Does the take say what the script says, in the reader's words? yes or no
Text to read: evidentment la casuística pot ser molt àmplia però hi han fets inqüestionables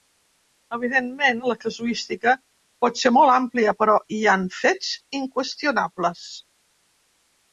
yes